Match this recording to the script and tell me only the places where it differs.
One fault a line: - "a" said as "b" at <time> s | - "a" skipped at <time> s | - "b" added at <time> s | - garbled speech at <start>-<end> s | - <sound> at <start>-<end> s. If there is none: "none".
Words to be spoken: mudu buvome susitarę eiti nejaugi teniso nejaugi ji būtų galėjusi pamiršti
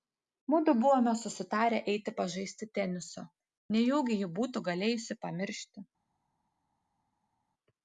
- "nejaugi" said as "pažaisti" at 2.2 s